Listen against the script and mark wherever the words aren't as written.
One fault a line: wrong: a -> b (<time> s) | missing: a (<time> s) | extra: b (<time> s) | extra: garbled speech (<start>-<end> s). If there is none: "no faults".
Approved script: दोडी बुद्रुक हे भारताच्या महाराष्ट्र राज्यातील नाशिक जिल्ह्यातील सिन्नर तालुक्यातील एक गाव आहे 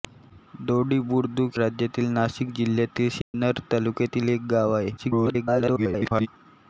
missing: हे भारताच्या महाराष्ट्र (1.6 s)
extra: garbled speech (5.0-6.3 s)